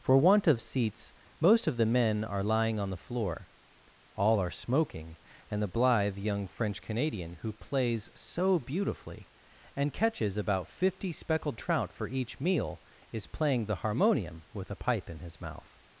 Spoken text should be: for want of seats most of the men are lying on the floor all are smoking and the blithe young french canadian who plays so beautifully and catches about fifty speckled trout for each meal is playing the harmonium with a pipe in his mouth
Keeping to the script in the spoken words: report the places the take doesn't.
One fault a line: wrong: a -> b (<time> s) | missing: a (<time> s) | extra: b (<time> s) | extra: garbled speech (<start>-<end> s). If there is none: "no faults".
no faults